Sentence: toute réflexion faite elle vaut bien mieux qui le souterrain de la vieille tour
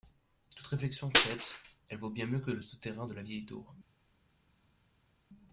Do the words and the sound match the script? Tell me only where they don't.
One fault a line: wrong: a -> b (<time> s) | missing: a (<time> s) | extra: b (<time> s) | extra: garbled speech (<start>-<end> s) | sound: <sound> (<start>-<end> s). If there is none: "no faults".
wrong: qui -> que (2.4 s)